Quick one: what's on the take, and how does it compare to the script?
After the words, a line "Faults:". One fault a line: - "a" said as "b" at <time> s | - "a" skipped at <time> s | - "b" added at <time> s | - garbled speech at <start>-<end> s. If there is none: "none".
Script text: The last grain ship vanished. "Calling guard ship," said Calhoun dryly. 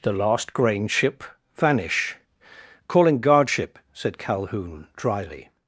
The last grain ship vanish. "Calling guard ship," said Calhoun dryly.
Faults:
- "vanished" said as "vanish" at 1.6 s